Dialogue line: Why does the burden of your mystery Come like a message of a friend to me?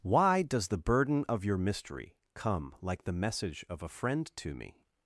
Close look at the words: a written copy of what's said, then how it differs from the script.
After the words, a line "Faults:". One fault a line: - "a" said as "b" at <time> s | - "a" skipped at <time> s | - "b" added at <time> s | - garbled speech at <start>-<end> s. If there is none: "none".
Why does the burden of your mystery Come like the message of a friend to me?
Faults:
- "a" said as "the" at 3.0 s